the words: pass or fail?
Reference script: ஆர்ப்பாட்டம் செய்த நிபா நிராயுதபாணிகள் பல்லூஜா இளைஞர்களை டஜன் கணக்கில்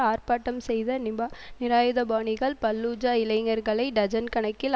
pass